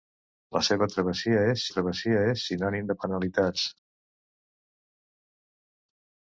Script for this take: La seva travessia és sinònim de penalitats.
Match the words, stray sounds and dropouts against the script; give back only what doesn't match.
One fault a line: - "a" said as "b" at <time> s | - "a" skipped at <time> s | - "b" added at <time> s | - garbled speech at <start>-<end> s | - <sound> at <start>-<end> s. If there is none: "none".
- "travessia és" added at 1.7 s